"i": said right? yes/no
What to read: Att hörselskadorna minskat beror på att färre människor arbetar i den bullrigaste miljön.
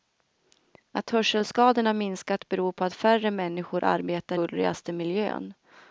no